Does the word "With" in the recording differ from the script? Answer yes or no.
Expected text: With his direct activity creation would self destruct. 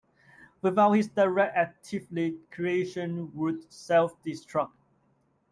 yes